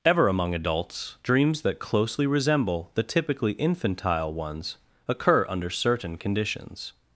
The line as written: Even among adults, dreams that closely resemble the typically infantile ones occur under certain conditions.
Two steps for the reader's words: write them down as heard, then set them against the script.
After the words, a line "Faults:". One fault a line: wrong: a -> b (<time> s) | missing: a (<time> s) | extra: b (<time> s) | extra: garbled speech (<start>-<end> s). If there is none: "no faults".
Ever among adults, dreams that closely resemble the typically infantile ones occur under certain conditions.
Faults:
wrong: Even -> Ever (0.0 s)